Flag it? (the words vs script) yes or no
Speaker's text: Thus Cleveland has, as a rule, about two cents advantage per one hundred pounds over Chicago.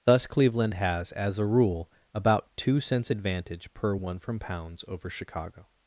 yes